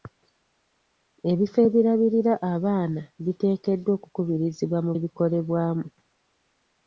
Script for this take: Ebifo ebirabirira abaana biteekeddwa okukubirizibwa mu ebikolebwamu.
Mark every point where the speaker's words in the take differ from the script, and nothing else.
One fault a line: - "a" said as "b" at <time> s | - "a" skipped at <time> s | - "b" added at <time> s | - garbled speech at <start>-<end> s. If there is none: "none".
none